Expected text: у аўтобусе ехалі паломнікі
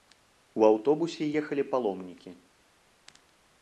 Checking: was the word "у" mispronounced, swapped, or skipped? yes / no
no